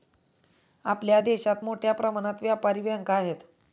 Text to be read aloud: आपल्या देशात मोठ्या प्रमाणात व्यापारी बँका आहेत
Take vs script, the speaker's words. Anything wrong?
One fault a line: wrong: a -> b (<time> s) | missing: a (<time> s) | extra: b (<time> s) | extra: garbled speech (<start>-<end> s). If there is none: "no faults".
no faults